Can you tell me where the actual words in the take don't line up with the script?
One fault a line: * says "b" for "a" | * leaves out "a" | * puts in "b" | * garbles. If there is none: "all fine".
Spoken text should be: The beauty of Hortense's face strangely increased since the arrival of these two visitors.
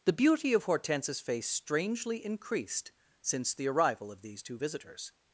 all fine